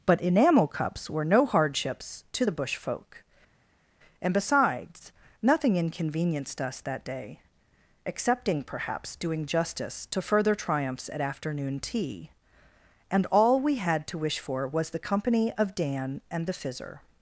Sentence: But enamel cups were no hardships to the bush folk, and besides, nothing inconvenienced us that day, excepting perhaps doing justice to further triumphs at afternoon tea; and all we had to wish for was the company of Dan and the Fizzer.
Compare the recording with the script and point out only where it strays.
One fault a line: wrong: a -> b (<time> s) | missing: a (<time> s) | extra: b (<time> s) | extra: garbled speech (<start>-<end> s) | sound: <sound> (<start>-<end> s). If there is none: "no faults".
no faults